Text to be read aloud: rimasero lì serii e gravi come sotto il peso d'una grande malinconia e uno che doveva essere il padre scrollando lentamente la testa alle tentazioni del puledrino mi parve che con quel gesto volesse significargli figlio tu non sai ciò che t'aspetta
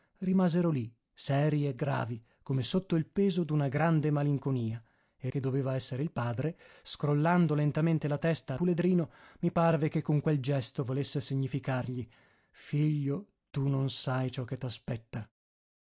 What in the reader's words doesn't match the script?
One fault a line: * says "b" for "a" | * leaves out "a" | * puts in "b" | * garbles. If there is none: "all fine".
* leaves out "uno"
* leaves out "alle tentazioni del"